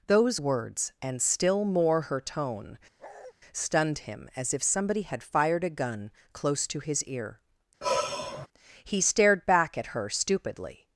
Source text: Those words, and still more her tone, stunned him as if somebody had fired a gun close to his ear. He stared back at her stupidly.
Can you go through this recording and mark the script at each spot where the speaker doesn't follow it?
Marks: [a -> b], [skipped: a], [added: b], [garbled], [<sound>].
Those words, and still more her tone, [bark] stunned him as if somebody had fired a gun close to his ear. [sigh] He stared back at her stupidly.